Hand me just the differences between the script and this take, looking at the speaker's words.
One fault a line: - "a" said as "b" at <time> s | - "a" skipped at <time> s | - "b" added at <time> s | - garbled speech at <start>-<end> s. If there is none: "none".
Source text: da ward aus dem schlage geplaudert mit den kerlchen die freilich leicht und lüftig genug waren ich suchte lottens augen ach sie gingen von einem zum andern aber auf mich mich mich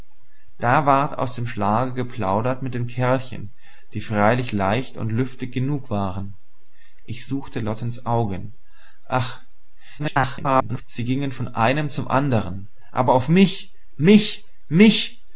- garbled speech at 10.0-10.8 s